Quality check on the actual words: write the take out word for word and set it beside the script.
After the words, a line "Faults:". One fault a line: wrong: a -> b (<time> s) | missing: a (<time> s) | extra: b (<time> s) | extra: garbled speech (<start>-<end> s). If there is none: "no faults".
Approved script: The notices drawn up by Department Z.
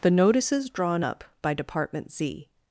The notices drawn up by Department Z.
Faults:
no faults